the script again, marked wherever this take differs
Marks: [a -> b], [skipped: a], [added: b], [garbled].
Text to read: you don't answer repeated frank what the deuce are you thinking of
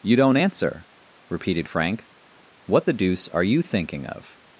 you don't answer repeated frank what the deuce are you thinking of